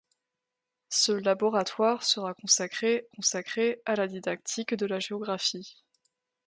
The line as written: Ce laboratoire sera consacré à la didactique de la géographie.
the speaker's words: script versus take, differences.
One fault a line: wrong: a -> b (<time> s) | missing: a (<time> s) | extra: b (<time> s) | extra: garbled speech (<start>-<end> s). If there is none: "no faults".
extra: consacré (3.1 s)